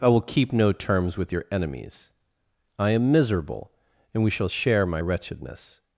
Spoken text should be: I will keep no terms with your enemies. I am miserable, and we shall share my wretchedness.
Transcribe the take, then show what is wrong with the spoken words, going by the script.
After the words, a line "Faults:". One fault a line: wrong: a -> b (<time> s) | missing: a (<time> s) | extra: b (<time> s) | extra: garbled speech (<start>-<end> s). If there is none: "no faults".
I will keep no terms with your enemies. I am miserable, and we shall share my wretchedness.
Faults:
no faults